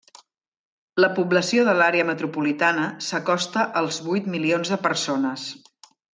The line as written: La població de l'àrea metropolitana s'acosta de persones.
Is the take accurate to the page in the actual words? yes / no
no